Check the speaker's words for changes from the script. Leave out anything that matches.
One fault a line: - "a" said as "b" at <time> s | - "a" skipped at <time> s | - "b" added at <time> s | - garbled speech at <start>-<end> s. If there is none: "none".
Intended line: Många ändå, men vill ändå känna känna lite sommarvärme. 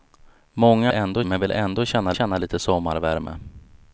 none